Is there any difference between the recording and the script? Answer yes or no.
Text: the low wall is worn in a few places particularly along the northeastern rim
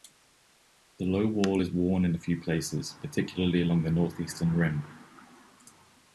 no